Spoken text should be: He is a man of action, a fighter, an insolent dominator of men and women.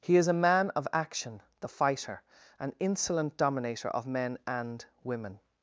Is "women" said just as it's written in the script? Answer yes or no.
yes